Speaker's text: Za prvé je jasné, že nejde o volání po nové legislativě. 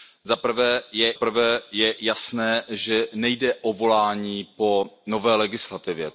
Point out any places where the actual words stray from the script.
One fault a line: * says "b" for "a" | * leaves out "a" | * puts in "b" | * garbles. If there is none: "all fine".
* puts in "prvé je"